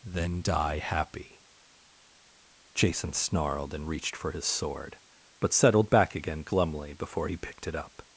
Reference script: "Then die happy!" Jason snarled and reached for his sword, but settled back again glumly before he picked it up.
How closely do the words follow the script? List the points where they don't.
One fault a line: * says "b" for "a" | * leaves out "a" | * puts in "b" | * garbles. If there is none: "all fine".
all fine